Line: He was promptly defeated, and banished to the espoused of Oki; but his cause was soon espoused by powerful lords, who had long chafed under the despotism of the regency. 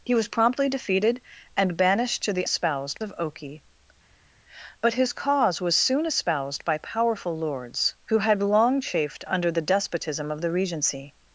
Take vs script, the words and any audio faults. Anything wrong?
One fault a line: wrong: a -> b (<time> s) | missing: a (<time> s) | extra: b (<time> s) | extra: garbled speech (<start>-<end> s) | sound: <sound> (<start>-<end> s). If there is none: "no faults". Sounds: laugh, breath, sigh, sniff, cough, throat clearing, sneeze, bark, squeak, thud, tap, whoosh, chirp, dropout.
no faults